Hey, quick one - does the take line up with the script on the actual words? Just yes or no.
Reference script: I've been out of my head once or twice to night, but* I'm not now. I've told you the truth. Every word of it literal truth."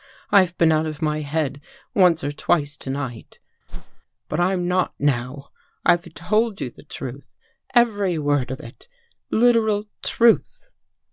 yes